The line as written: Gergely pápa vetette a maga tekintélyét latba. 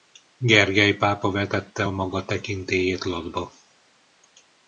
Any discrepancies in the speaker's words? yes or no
no